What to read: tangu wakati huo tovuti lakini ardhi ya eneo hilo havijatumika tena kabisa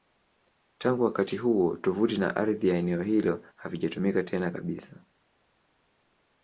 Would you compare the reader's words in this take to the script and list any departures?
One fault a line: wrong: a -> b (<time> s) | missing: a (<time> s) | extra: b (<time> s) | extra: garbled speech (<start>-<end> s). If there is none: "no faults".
wrong: lakini -> na (2.2 s)